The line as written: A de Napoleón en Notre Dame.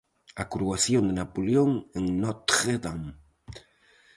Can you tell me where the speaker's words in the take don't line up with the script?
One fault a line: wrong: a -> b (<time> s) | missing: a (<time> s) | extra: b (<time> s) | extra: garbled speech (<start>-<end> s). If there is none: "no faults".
extra: coroación (0.5 s)